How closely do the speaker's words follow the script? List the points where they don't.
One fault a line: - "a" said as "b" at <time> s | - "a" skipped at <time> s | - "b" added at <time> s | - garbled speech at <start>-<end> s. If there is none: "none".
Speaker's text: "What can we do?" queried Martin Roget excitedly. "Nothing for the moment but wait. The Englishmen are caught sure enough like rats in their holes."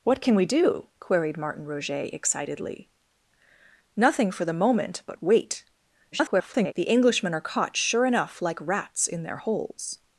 - garbled speech at 6.1-6.7 s